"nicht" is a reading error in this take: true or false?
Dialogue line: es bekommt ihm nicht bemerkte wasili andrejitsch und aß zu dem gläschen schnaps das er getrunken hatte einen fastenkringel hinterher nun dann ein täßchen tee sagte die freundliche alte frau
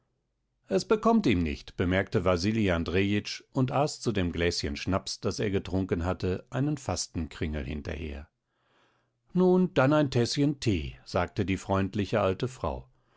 false